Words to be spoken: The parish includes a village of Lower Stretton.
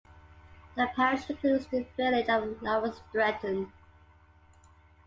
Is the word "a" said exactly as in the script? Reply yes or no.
no